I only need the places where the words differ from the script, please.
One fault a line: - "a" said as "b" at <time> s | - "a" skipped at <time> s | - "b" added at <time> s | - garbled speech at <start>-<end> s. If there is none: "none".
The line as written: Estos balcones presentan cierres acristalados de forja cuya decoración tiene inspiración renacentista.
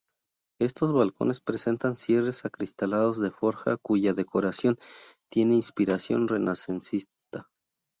none